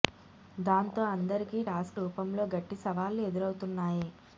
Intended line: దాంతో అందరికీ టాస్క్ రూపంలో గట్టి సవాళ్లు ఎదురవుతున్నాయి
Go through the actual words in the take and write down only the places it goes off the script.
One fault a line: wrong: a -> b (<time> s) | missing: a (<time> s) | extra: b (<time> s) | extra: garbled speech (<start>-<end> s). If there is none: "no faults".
no faults